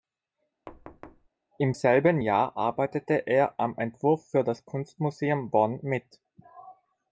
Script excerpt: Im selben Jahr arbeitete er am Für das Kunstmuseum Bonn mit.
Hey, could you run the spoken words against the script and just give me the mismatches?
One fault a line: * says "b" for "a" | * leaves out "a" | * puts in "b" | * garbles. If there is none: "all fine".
* puts in "Entwurf"